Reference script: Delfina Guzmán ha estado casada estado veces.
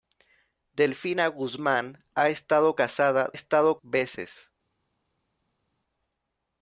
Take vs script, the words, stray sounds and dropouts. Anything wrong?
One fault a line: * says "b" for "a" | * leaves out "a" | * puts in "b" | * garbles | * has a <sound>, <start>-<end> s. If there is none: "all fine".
all fine